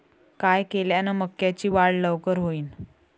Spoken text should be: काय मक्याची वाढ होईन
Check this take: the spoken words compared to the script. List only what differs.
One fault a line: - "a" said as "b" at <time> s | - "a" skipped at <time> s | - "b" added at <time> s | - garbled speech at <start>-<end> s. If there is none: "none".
- "केल्यान" added at 0.6 s
- "लवकर" added at 1.9 s